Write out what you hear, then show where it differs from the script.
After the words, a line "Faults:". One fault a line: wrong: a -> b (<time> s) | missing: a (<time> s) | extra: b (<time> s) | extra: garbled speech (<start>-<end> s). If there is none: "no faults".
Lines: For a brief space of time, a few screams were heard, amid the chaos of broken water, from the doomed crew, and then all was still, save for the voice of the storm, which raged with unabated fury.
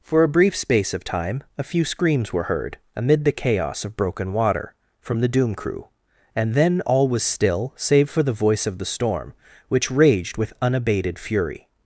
For a brief space of time, a few screams were heard, amid the chaos of broken water, from the doom crew, and then all was still, save for the voice of the storm, which raged with unabated fury.
Faults:
wrong: doomed -> doom (5.3 s)